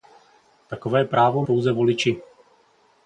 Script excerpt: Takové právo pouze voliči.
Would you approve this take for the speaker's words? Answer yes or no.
yes